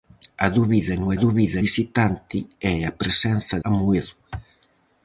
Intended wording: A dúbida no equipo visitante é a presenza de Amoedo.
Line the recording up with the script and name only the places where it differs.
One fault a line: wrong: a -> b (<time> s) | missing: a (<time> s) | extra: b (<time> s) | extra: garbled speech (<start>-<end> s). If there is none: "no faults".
wrong: equipo -> dúbida (1.2 s)
missing: de (3.6 s)